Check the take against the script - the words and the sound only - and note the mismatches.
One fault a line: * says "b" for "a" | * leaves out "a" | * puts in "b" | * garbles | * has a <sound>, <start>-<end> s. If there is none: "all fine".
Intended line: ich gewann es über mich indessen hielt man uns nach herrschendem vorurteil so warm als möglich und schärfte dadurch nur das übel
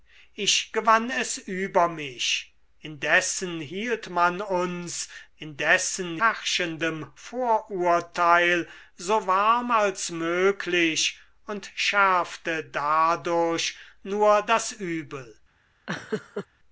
* says "indessen" for "nach"
* has a laugh, 15.9-16.5 s